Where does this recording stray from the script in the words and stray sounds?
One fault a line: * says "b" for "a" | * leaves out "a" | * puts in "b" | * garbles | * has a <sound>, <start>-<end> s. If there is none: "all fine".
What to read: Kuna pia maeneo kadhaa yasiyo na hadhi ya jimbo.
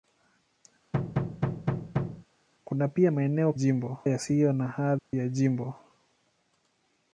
* has a thud, 0.9-2.3 s
* says "jimbo" for "kadhaa"
* has a dropout, 5.0-5.1 s